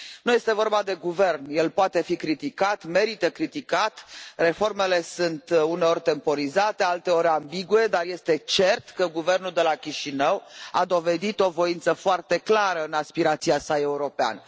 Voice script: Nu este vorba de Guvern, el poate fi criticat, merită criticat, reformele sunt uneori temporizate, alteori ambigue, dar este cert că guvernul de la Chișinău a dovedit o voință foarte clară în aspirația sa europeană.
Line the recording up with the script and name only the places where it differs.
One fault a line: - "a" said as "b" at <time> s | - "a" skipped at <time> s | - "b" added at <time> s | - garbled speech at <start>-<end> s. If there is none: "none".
none